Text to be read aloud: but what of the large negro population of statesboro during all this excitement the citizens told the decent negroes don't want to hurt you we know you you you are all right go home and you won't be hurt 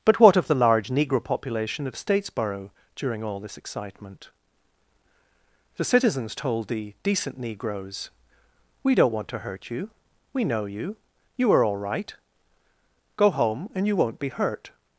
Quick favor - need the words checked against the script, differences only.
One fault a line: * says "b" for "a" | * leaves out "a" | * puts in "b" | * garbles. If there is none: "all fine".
* puts in "we"
* leaves out "you"